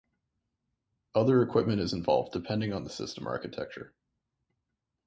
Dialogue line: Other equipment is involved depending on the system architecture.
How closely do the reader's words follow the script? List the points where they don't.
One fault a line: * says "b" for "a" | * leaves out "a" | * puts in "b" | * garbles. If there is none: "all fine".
all fine